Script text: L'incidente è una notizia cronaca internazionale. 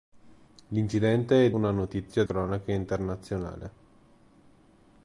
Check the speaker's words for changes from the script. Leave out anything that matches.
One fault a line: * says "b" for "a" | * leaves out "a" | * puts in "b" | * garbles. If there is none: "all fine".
all fine